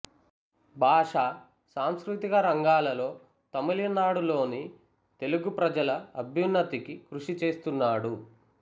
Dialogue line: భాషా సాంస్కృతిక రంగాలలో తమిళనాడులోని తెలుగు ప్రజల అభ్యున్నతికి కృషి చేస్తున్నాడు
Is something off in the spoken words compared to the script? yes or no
no